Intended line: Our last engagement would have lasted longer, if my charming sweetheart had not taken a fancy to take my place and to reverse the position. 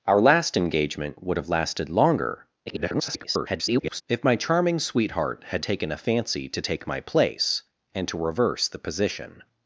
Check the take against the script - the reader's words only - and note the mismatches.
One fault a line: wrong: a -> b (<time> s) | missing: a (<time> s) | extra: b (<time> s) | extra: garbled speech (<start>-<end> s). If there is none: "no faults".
extra: garbled speech (2.7-4.0 s)
missing: not (5.6 s)